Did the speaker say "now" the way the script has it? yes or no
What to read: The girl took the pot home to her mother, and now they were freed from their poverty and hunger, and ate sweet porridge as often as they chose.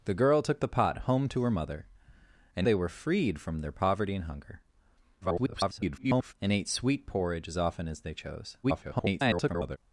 no